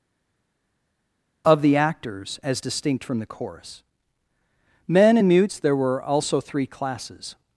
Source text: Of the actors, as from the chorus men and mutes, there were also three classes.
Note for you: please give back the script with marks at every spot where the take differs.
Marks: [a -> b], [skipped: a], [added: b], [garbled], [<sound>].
Of the actors, as [added: distinct] from the chorus men and mutes, there were also three classes.